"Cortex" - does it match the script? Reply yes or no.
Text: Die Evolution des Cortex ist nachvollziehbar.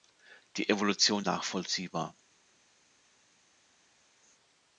no